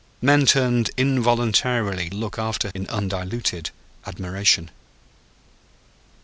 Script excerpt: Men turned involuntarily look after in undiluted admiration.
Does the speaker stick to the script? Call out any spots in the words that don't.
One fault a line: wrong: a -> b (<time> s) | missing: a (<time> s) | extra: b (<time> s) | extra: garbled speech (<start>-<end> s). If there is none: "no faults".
no faults